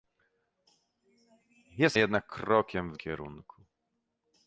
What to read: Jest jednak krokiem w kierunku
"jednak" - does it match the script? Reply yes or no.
yes